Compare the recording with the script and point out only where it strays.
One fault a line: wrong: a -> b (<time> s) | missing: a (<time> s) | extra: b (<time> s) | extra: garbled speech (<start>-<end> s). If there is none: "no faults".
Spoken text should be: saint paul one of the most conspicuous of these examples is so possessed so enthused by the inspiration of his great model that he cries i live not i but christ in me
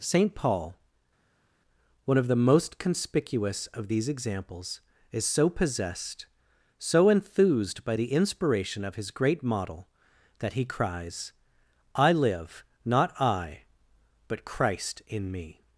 no faults